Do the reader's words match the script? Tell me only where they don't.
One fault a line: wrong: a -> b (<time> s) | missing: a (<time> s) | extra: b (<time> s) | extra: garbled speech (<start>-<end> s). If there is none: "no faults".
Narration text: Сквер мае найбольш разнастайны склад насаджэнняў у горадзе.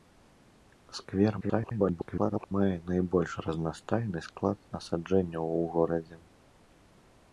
extra: garbled speech (1.4-2.5 s)